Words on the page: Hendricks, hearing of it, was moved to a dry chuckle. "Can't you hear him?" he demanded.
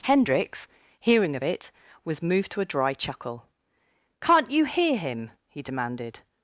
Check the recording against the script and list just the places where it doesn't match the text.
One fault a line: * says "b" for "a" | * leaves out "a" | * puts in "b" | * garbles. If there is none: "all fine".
all fine